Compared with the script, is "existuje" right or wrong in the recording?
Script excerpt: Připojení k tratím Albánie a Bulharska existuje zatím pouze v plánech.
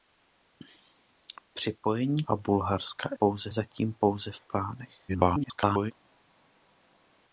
wrong